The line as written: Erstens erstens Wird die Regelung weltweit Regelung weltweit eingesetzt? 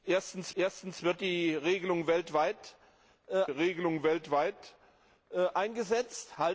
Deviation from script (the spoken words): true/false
false